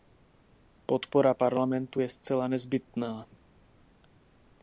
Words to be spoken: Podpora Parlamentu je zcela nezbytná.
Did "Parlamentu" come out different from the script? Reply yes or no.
no